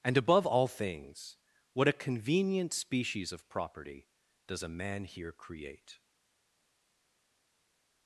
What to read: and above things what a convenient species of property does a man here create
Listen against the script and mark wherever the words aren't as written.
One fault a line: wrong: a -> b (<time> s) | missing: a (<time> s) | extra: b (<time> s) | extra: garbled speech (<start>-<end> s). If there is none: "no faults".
extra: all (0.5 s)